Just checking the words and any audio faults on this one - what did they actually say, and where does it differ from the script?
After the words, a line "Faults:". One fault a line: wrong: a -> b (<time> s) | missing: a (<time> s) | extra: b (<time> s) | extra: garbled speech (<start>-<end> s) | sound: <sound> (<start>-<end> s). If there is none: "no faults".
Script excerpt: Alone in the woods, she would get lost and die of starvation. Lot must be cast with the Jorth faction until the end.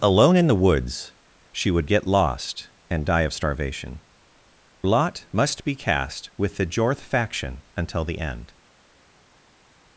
Alone in the woods, she would get lost and die of starvation. Lot must be cast with the Jorth faction until the end.
Faults:
no faults